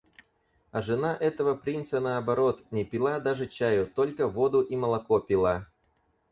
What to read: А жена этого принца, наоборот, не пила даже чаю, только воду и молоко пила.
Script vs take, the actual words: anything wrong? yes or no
no